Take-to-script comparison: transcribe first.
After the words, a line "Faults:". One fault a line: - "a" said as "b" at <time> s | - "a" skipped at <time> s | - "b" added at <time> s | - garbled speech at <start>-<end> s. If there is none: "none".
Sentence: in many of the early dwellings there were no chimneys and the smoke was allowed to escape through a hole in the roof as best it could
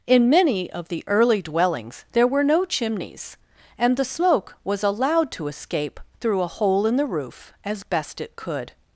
in many of the early dwellings there were no chimneys and the smoke was allowed to escape through a hole in the roof as best it could
Faults:
none